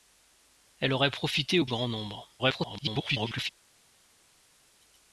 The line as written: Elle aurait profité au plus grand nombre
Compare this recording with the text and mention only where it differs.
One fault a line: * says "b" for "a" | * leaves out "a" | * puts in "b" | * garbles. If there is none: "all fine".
* leaves out "plus"
* garbles